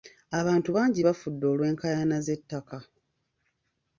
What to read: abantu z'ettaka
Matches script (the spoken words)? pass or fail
fail